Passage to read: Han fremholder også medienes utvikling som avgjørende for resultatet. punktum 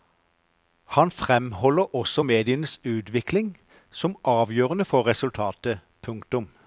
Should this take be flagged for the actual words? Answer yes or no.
no